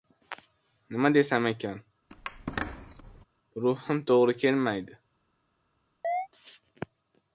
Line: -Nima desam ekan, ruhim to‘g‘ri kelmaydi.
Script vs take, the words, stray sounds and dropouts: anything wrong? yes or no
yes